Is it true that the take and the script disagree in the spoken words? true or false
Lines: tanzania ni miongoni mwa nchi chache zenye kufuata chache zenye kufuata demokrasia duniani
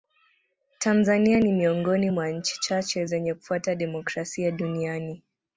true